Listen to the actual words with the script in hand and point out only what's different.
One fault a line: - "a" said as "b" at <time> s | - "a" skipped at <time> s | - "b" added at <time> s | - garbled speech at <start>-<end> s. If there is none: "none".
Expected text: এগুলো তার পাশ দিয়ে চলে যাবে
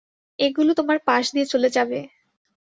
- "তার" said as "তোমার" at 0.8 s